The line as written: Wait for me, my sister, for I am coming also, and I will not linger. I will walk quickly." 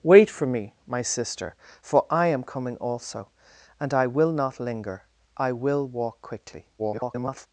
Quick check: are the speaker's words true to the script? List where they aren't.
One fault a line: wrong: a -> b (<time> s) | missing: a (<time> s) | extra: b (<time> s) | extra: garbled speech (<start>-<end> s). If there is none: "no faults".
extra: garbled speech (6.8-7.5 s)